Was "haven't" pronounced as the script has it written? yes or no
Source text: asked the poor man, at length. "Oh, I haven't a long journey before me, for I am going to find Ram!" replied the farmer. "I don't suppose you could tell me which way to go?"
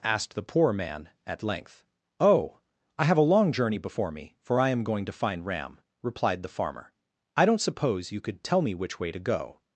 no